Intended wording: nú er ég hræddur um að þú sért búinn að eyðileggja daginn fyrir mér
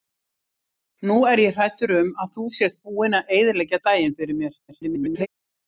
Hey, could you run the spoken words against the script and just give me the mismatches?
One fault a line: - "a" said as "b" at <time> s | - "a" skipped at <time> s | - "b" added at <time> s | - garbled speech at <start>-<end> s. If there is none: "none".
- garbled speech at 4.7-5.3 s